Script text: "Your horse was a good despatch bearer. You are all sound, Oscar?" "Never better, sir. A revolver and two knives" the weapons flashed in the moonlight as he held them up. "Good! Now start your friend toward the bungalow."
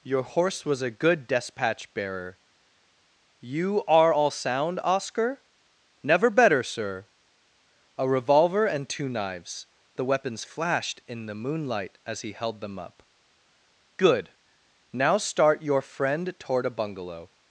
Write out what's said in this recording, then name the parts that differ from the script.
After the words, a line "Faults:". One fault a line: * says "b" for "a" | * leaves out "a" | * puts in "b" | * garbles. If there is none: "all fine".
"Your horse was a good despatch bearer. You are all sound, Oscar?" "Never better, sir. A revolver and two knives" the weapons flashed in the moonlight as he held them up. "Good! Now start your friend toward a bungalow."
Faults:
* says "a" for "the"